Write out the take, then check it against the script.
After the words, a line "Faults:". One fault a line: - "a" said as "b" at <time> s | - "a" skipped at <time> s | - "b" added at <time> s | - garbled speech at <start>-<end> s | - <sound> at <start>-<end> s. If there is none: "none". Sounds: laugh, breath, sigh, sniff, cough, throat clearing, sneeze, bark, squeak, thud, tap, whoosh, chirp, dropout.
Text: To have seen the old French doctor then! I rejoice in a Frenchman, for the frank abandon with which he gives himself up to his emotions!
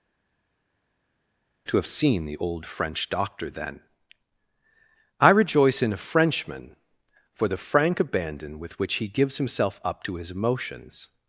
To have seen the old French doctor then! I rejoice in a Frenchman, for the frank abandon with which he gives himself up to his emotions!
Faults:
none